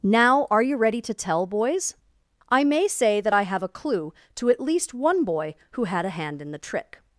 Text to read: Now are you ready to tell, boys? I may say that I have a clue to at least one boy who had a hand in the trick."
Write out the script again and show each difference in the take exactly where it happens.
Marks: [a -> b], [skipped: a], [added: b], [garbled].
Now are you ready to tell, boys? I may say that I have a clue to at least one boy who had a hand in the trick."